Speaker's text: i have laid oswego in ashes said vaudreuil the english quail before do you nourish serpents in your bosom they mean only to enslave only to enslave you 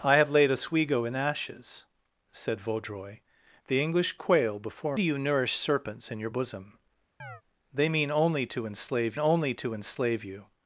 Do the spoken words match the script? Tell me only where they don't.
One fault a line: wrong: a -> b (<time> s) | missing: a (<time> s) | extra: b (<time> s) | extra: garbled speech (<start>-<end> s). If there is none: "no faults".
no faults